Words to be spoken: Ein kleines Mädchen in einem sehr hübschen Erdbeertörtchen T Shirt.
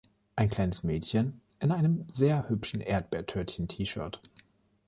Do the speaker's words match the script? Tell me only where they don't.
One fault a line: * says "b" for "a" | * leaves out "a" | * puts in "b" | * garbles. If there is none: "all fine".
all fine